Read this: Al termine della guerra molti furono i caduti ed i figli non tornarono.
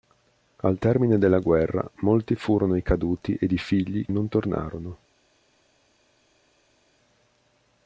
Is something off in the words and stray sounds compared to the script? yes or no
no